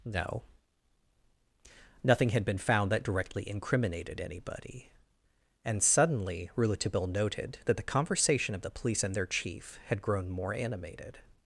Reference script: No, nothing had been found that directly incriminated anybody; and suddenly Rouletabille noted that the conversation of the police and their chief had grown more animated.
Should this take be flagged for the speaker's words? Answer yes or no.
no